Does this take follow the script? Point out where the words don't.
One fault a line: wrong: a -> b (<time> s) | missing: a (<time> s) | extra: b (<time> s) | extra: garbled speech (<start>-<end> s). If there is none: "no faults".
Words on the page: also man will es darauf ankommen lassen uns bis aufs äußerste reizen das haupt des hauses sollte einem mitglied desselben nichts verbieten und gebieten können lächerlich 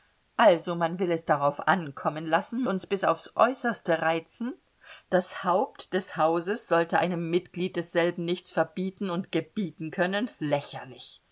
no faults